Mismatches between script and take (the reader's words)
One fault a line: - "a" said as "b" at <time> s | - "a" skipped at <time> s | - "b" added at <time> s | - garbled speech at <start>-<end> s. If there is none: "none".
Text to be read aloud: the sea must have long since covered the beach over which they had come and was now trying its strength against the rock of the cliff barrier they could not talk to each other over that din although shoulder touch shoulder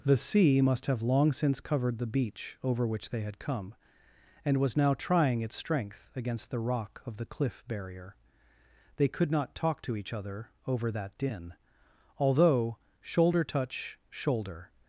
none